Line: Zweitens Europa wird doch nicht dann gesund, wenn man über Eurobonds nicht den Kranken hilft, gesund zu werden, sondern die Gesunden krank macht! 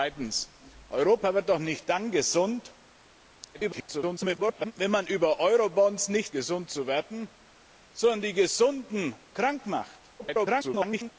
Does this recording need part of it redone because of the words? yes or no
yes